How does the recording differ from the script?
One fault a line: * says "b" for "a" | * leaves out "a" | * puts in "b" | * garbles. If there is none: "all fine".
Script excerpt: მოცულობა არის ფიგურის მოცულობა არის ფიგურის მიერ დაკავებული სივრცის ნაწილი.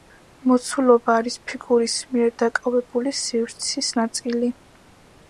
* leaves out "მოცულობა არის ფიგურის"